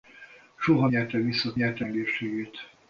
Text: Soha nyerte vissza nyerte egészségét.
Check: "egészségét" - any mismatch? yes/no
no